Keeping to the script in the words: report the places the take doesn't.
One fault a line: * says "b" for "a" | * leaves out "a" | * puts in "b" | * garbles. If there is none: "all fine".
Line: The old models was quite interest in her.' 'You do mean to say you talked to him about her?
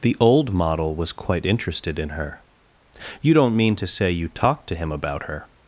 * says "model" for "models"
* says "interested" for "interest"
* says "don't" for "do"